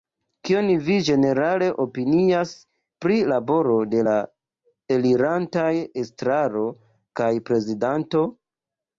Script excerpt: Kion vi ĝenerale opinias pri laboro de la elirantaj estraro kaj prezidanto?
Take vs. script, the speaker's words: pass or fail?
pass